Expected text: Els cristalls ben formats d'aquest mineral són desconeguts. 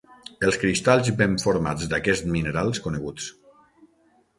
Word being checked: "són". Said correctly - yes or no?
no